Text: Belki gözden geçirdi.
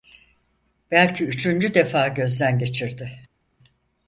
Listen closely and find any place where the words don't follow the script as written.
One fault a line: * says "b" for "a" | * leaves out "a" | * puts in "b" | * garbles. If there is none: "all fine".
* puts in "üçüncü defa"